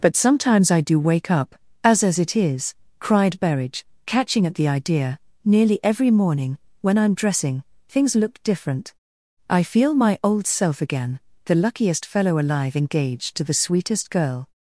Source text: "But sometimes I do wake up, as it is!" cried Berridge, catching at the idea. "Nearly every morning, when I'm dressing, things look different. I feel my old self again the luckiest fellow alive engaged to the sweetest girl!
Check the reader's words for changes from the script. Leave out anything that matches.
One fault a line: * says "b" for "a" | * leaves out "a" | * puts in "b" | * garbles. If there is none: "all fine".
* puts in "as"